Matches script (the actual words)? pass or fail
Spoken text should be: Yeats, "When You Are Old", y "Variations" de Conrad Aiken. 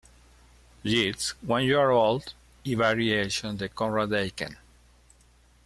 pass